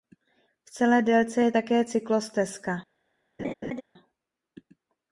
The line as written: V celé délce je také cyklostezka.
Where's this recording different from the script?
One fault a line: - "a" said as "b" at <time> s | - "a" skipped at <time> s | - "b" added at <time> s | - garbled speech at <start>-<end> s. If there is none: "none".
none